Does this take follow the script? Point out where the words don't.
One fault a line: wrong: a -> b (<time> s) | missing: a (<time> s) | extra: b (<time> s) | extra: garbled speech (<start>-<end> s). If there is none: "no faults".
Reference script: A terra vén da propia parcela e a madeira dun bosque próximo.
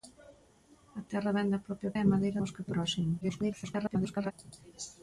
missing: parcela (1.9 s)
missing: dun (2.4 s)
extra: garbled speech (3.2-4.3 s)